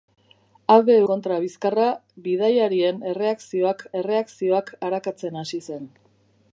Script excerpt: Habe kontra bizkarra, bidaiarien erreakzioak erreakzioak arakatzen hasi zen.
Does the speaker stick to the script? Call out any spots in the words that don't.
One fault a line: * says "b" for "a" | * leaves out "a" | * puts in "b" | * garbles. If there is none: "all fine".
all fine